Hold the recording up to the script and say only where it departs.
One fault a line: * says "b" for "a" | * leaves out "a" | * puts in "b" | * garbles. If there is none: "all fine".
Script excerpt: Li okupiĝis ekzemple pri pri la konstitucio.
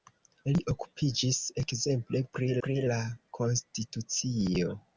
all fine